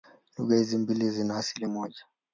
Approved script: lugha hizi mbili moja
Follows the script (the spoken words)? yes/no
no